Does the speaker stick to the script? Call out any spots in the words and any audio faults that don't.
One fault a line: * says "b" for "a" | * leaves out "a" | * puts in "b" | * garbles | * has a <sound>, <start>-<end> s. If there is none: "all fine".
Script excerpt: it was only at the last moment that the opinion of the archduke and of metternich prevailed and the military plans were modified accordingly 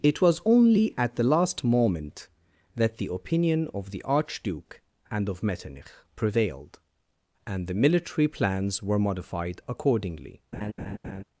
* has a laugh, 10.5-11.2 s